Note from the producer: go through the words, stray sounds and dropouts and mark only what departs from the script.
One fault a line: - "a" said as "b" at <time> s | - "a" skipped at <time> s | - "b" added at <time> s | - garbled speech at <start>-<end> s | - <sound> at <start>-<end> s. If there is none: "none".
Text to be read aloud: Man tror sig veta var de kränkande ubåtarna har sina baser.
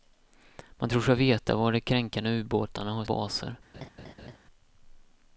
- "sina" skipped at 3.0 s
- laugh at 3.7-4.4 s